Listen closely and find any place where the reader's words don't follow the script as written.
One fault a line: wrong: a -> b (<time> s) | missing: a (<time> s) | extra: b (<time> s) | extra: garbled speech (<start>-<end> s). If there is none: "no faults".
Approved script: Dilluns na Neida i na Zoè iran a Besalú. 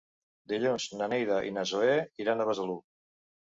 no faults